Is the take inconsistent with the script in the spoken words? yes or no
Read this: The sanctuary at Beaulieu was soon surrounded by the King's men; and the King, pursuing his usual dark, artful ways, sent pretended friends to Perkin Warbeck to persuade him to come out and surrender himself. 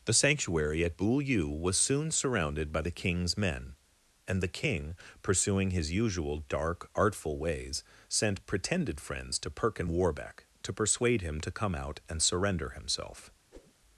no